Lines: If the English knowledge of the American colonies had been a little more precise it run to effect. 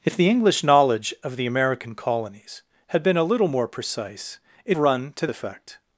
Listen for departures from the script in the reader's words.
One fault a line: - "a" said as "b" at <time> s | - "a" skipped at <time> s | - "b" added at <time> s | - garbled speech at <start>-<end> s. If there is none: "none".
none